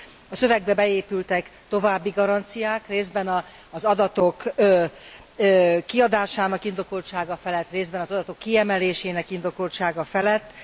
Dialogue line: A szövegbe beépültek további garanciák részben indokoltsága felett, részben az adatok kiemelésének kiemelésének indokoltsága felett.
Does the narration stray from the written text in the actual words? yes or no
yes